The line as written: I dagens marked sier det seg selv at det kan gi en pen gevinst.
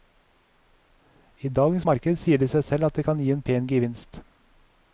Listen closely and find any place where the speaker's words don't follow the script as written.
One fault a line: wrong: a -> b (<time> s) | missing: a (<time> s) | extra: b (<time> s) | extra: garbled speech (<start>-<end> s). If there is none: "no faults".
no faults